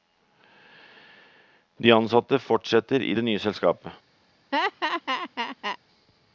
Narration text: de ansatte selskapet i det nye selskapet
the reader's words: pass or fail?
fail